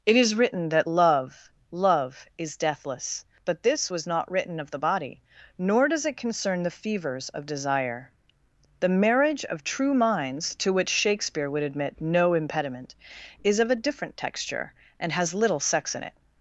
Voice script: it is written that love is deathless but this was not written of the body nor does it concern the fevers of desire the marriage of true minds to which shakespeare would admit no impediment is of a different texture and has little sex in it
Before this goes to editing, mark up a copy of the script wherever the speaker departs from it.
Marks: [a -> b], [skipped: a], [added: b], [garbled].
it is written that love [added: love] is deathless but this was not written of the body nor does it concern the fevers of desire the marriage of true minds to which shakespeare would admit no impediment is of a different texture and has little sex in it